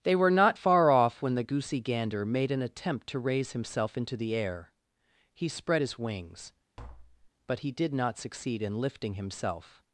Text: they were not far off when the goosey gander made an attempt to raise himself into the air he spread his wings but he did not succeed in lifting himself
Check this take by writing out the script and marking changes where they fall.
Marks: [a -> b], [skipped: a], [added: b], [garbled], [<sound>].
they were not far off when the goosey gander made an attempt to raise himself into the air he spread his wings [tap] but he did not succeed in lifting himself